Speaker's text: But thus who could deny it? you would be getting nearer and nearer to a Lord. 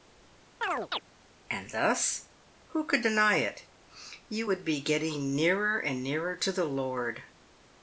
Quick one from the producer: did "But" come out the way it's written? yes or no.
no